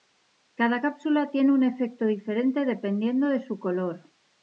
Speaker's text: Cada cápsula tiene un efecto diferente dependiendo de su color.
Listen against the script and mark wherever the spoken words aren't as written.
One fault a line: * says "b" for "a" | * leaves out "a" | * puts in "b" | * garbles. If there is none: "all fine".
all fine